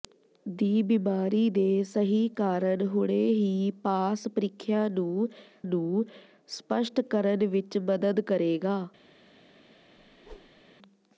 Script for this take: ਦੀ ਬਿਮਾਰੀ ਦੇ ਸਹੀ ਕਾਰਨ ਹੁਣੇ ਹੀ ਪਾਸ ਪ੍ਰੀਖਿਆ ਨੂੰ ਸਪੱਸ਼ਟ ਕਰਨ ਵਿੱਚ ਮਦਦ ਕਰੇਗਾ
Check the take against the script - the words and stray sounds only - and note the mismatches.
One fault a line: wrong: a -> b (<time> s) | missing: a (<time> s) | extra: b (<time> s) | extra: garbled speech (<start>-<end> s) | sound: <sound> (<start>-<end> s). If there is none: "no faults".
extra: ਨੂੰ (5.6 s)
sound: whoosh (10.0-10.6 s)